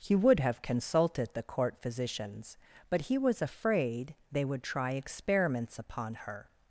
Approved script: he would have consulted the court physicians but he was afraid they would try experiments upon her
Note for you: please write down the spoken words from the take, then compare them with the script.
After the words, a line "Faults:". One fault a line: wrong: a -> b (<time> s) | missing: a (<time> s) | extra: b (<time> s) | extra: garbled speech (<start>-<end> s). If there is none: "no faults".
he would have consulted the court physicians but he was afraid they would try experiments upon her
Faults:
no faults